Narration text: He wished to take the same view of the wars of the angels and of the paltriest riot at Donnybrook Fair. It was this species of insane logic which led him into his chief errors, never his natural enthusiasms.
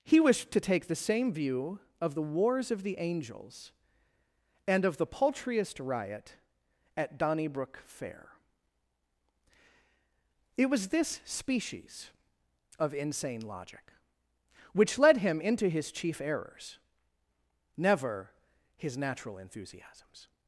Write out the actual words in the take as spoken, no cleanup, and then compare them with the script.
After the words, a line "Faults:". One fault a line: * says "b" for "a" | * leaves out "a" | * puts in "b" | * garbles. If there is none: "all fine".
He wished to take the same view of the wars of the angels and of the paltriest riot at Donnybrook Fair. It was this species of insane logic which led him into his chief errors, never his natural enthusiasms.
Faults:
all fine